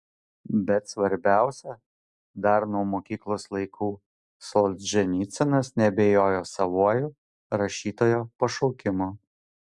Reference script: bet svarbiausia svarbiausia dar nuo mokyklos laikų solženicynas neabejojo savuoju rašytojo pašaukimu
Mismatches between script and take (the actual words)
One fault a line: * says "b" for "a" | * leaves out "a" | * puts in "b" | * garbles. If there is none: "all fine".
* leaves out "svarbiausia"